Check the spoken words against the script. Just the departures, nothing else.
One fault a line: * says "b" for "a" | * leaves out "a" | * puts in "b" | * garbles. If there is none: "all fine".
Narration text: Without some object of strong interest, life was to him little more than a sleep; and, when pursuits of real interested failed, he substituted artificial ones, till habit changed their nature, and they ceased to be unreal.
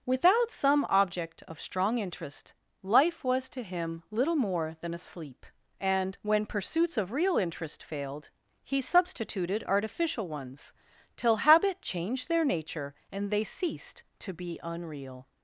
* says "interest" for "interested"